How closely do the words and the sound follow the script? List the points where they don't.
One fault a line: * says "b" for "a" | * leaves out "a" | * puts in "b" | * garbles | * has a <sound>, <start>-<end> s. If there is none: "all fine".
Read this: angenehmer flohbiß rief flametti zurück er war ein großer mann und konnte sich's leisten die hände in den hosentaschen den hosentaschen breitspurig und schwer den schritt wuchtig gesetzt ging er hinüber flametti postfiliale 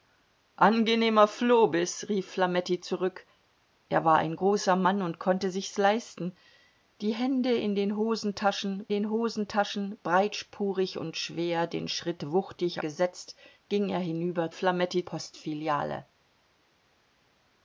all fine